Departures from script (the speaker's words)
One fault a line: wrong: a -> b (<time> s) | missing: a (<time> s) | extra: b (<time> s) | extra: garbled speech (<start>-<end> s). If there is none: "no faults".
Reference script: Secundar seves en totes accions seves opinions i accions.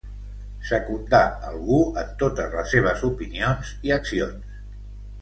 wrong: seves -> algú (1.5 s)
wrong: accions -> les (2.6 s)